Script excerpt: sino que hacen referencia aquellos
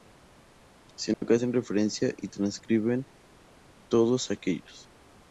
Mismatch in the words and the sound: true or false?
true